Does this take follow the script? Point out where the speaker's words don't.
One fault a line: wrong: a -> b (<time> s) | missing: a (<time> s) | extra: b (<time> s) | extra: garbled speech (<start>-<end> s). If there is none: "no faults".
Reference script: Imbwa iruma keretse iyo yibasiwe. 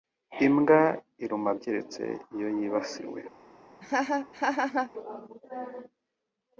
no faults